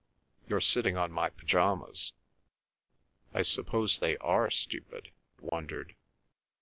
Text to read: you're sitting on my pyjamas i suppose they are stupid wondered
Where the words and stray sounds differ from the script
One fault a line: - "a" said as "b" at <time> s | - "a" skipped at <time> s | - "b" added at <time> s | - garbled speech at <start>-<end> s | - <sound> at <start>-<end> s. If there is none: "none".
- dropout at 5.5-5.5 s